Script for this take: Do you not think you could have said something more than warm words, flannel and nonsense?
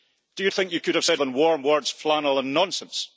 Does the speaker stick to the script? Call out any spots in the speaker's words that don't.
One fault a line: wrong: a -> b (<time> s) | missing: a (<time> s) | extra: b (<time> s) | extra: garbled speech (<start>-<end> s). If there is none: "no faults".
missing: not (0.5 s)
missing: something more (1.2 s)